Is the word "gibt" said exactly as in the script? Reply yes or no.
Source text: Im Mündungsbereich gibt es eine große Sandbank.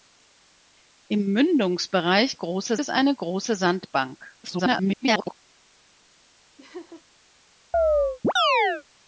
no